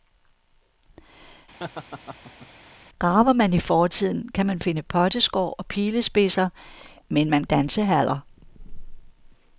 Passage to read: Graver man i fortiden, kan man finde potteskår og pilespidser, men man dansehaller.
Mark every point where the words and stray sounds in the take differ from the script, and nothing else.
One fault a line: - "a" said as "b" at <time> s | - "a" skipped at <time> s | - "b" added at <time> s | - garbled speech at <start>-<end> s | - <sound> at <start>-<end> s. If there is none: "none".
- laugh at 1.6-2.5 s